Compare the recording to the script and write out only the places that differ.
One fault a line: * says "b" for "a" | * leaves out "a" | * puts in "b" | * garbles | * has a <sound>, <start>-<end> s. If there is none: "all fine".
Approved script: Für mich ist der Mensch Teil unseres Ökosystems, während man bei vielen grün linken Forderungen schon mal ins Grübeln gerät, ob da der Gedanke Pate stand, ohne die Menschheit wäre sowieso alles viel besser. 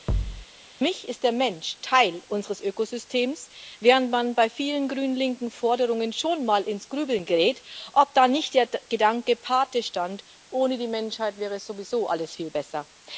* has a thud, 0.1-0.5 s
* puts in "nicht"